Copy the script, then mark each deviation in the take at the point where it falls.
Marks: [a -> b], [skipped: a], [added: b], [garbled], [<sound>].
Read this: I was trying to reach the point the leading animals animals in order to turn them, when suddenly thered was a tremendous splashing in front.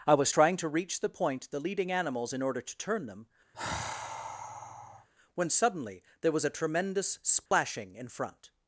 I was trying to reach the point the leading animals [skipped: animals] in order to turn them, [sigh] when suddenly [thered -> there] was a tremendous splashing [dropout] in front.